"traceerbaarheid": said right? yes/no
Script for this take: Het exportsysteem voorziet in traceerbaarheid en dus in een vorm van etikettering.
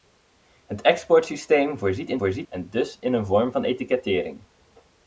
no